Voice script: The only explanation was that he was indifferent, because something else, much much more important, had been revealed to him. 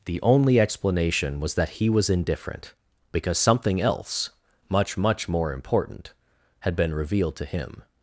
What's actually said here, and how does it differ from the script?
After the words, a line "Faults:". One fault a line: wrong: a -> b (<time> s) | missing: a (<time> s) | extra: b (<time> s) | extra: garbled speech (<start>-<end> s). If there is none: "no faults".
The only explanation was that he was indifferent, because something else, much much more important, had been revealed to him.
Faults:
no faults